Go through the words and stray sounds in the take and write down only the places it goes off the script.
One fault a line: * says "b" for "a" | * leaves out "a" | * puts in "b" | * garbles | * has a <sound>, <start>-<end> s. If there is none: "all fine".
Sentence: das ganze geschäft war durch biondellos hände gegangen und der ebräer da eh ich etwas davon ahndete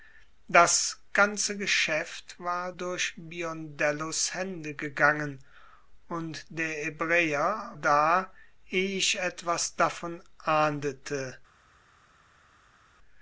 all fine